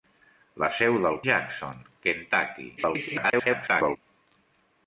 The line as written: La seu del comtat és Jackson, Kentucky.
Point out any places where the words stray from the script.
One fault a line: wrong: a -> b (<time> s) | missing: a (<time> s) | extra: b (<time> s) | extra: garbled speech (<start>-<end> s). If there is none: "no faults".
missing: comtat és (1.2 s)
extra: garbled speech (2.8-4.0 s)